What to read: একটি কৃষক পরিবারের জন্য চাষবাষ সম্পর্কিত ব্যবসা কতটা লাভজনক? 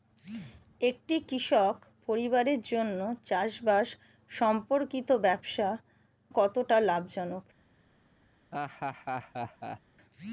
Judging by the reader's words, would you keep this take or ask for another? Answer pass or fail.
pass